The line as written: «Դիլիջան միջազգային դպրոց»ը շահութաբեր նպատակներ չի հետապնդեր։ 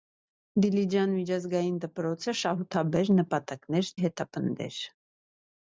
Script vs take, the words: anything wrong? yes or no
yes